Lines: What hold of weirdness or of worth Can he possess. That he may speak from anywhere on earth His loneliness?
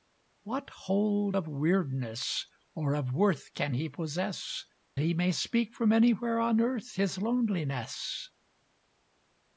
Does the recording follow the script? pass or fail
fail